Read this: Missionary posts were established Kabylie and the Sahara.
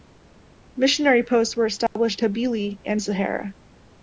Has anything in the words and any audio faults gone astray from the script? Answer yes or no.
yes